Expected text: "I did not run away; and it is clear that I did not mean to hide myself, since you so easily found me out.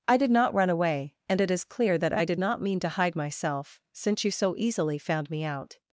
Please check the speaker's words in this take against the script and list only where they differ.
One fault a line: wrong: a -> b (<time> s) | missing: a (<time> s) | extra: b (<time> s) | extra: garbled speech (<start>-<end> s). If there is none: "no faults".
no faults